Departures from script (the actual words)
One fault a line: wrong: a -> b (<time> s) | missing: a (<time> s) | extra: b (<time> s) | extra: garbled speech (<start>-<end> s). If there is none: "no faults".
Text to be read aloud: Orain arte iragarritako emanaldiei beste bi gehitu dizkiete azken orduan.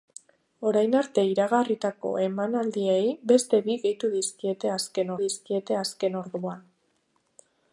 extra: dizkiete azken (5.2 s)